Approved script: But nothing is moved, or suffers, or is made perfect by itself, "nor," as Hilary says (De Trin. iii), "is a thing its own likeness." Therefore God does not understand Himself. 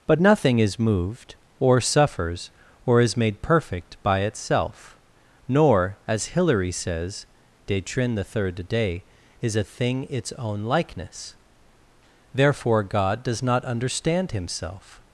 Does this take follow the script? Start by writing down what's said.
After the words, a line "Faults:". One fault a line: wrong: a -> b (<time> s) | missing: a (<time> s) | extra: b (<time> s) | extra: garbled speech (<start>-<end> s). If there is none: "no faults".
But nothing is moved, or suffers, or is made perfect by itself, "nor," as Hilary says (De Trin. the third day), "is a thing its own likeness." Therefore God does not understand Himself.
Faults:
wrong: iii -> the third day (8.1 s)